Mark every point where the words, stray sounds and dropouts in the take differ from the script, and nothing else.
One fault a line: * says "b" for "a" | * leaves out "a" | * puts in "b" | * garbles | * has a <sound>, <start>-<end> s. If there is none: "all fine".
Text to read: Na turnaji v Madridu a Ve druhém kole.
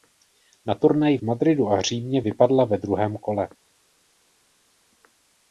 * puts in "Římě vypadla"